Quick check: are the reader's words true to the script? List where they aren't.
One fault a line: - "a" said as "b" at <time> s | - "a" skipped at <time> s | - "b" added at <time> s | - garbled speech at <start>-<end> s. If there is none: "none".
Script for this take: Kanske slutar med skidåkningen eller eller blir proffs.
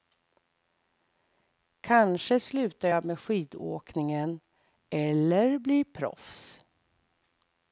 - "jag" added at 2.9 s
- "eller" skipped at 5.6 s